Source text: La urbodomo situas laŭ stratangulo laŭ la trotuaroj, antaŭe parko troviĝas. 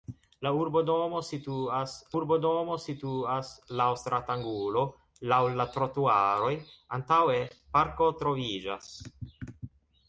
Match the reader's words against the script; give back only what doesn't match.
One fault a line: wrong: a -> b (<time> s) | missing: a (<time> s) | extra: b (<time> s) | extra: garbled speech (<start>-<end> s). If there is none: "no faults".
extra: urbodomo situas (2.1 s)